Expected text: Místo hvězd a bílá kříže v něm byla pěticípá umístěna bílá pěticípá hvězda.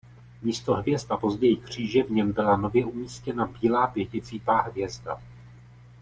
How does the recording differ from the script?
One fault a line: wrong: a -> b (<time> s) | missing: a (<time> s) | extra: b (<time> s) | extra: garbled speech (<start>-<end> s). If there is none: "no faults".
wrong: bílá -> později (1.1 s)
wrong: pěticípá -> nově (2.6 s)